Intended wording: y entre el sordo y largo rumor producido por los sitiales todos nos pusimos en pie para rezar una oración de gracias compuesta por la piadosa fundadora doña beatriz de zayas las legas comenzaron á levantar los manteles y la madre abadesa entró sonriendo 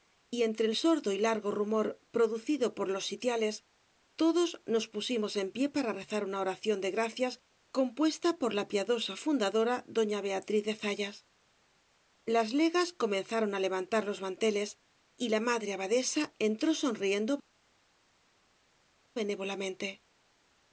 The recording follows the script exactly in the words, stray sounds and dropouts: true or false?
true